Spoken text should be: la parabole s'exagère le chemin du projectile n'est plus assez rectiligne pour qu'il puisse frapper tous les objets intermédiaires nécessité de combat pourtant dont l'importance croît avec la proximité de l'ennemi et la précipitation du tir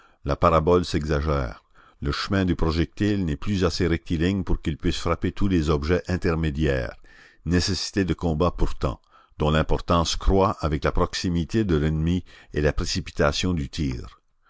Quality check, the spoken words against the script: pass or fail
pass